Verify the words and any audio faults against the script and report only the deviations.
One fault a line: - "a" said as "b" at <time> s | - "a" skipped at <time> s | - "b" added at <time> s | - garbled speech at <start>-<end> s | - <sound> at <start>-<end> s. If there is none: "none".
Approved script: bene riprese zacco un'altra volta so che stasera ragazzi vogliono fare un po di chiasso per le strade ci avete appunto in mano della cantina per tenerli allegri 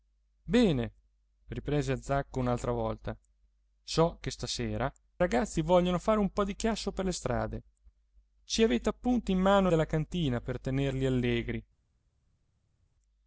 none